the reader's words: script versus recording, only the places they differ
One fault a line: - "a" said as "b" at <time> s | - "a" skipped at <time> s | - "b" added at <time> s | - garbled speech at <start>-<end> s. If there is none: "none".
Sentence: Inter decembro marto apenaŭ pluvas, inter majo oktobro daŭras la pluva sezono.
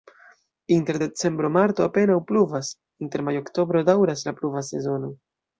none